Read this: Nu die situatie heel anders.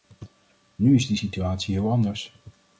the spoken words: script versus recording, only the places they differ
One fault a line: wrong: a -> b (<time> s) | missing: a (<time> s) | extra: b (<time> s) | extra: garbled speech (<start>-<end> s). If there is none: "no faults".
extra: is (0.9 s)